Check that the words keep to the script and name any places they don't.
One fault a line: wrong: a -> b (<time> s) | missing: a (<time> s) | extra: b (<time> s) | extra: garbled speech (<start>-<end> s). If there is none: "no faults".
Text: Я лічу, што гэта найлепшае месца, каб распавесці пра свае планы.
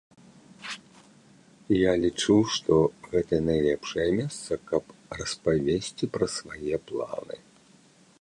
no faults